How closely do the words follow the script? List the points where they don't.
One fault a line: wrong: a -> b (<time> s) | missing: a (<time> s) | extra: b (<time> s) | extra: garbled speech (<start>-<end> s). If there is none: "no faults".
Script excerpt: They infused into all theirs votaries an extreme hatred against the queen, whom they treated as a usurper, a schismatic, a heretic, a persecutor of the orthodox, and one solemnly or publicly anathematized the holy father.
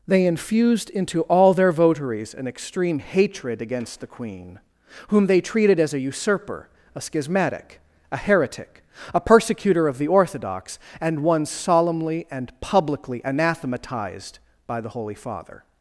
wrong: theirs -> their (1.5 s)
wrong: or -> and (12.3 s)
extra: by (14.7 s)